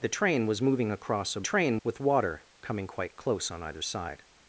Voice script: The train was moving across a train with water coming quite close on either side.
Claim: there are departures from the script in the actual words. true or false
false